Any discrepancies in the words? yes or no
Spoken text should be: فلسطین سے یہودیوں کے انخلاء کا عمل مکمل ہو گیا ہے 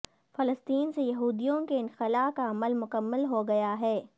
no